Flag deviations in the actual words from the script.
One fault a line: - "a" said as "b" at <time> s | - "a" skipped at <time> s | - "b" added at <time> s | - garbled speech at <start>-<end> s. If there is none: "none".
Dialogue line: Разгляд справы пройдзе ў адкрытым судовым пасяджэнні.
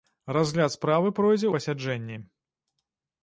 - "ў адкрытым судовым" skipped at 1.5 s